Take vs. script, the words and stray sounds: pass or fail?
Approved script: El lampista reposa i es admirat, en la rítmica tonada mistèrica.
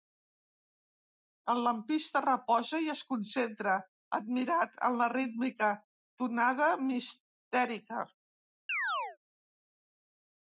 fail